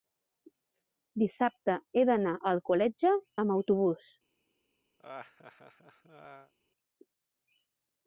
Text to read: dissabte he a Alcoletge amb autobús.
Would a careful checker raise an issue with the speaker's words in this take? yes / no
yes